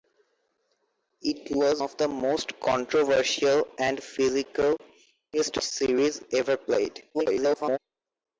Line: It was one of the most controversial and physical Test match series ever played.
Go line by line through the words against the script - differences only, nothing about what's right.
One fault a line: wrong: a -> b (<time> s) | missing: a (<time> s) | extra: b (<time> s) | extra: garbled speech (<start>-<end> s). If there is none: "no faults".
missing: one (1.8 s)
missing: match (5.6 s)
extra: garbled speech (7.1-7.8 s)